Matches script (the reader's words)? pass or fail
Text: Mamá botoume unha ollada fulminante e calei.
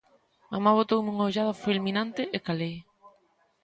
pass